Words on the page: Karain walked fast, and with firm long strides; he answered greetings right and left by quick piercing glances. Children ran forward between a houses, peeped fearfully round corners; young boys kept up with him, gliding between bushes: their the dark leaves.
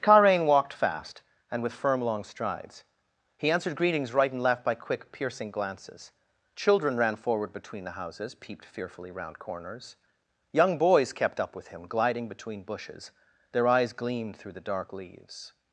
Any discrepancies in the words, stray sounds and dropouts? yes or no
yes